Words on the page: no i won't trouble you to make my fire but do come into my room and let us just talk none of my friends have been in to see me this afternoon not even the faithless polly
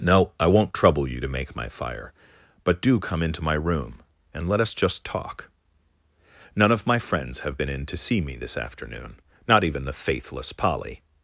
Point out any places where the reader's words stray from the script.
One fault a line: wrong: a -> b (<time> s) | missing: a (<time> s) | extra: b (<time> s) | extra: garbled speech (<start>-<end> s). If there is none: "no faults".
no faults